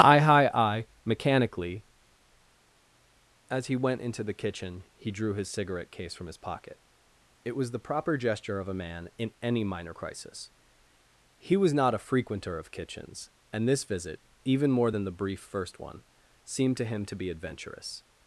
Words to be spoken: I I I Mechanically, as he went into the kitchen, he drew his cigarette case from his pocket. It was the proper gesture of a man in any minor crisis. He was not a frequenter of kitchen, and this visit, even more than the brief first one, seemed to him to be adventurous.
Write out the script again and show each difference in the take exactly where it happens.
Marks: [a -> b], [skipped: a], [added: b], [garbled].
I I I Mechanically, as he went into the kitchen, he drew his cigarette case from his pocket. It was the proper gesture of a man in any minor crisis. He was not a frequenter of [kitchen, -> kitchens] and this visit, even more than the brief first one, seemed to him to be adventurous.